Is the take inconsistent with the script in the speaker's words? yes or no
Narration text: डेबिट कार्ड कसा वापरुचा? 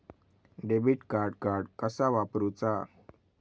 yes